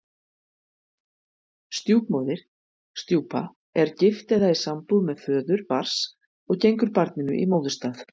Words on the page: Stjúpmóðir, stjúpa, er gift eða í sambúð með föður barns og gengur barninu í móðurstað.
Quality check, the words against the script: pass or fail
pass